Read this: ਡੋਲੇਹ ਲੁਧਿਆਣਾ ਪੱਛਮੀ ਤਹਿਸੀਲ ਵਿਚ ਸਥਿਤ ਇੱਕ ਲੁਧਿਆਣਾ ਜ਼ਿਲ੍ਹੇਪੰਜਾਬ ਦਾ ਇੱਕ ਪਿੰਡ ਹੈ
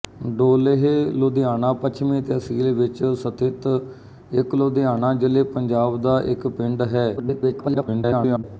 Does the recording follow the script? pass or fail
fail